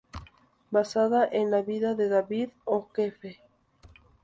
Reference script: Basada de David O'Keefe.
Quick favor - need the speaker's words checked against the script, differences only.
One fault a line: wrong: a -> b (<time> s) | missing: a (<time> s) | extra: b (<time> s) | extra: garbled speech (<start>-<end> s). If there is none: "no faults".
extra: en la vida (1.3 s)